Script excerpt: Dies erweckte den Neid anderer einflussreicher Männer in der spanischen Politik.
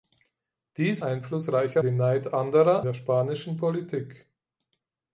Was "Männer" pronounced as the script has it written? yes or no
no